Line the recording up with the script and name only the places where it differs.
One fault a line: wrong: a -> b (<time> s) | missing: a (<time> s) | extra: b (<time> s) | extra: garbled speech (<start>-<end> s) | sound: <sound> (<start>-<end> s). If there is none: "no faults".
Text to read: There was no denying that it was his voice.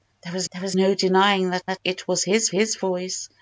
extra: there was (0.5 s)
extra: that (1.7 s)
extra: his (2.5 s)